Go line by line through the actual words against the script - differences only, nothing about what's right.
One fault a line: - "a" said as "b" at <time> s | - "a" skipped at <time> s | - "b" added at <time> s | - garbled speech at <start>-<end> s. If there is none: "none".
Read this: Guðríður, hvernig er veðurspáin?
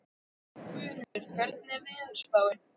none